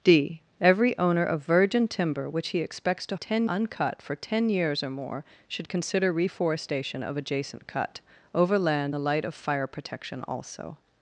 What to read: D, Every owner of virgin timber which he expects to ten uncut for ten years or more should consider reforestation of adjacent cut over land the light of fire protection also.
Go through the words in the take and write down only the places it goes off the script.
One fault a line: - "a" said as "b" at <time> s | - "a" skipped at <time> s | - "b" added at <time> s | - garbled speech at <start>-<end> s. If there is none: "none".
none